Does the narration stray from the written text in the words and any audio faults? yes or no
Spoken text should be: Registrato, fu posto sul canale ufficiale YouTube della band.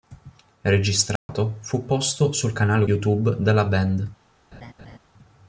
yes